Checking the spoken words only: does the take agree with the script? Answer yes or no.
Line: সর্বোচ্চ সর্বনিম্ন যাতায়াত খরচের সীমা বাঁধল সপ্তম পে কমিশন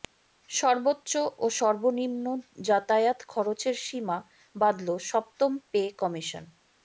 no